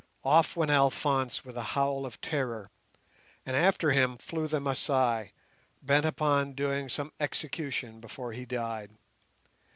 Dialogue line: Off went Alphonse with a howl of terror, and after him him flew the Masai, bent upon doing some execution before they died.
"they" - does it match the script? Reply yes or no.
no